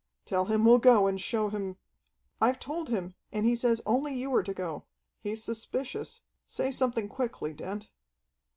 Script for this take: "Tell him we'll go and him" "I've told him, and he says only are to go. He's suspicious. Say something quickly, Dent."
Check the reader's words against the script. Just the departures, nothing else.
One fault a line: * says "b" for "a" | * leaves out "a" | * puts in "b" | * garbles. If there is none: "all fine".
* puts in "show"
* puts in "you"